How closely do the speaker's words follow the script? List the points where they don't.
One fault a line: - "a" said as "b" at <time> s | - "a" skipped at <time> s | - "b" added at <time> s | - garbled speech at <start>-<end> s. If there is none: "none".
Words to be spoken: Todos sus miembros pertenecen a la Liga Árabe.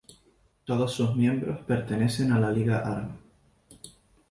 none